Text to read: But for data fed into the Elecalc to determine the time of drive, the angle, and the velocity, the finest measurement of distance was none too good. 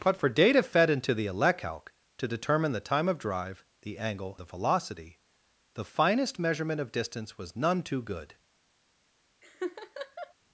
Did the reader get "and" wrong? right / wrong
wrong